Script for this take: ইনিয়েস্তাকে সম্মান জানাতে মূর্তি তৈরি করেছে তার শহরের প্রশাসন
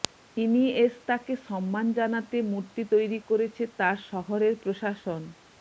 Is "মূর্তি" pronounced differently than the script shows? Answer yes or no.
no